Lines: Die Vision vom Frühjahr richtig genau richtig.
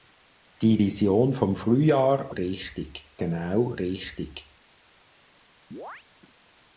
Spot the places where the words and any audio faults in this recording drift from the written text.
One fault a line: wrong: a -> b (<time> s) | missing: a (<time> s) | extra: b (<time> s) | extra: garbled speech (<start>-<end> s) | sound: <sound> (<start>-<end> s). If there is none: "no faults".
sound: chirp (5.7-6.0 s)